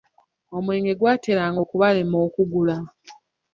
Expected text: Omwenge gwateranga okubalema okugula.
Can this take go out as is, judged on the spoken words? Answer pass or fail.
pass